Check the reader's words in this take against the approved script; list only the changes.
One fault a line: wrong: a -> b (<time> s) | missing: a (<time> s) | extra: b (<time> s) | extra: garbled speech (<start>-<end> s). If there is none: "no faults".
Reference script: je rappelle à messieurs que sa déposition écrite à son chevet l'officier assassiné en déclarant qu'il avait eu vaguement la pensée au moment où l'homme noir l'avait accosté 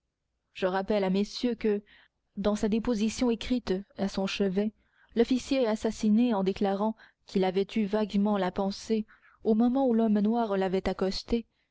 extra: dans (2.4 s)